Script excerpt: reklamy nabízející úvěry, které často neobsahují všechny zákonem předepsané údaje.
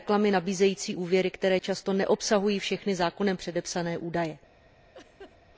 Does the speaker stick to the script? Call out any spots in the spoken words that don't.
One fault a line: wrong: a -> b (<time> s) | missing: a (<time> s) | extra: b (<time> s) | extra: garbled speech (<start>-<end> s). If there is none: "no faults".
no faults